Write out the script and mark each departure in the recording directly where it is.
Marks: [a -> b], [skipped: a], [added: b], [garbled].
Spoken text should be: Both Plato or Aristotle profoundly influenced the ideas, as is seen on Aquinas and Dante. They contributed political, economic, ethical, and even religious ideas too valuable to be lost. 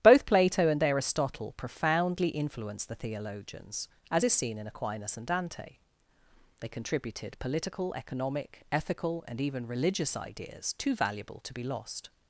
Both Plato [or -> and] Aristotle profoundly influenced the [ideas, -> theologians] as is seen [on -> in] Aquinas and Dante. They contributed political, economic, ethical, and even religious ideas too valuable to be lost.